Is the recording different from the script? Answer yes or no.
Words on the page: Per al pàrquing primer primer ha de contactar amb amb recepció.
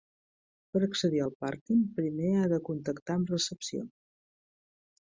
yes